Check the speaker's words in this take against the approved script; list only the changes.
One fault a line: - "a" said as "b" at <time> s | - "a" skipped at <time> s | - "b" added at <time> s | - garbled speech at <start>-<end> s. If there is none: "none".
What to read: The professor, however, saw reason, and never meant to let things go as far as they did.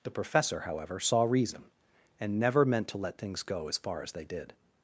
none